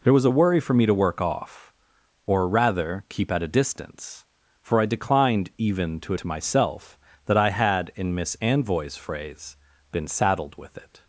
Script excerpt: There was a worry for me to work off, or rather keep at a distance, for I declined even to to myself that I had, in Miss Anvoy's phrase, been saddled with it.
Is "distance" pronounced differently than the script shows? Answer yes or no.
no